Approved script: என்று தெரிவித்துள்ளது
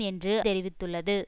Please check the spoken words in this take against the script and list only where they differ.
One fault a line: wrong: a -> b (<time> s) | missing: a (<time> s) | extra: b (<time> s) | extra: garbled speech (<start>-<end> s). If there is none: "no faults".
no faults